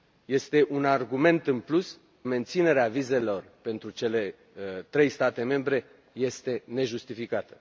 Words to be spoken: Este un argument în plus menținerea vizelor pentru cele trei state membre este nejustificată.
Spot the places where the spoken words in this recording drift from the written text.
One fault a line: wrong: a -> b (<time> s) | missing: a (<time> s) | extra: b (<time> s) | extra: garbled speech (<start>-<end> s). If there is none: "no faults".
no faults